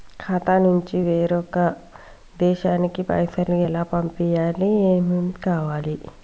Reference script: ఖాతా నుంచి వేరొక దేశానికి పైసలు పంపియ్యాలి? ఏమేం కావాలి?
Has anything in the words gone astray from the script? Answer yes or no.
yes